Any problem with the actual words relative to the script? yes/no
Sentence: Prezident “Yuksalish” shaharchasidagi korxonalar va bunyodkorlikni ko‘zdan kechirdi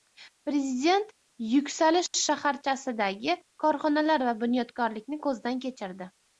no